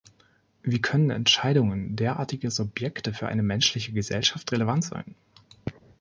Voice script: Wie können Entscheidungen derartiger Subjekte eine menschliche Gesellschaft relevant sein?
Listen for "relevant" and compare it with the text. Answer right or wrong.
right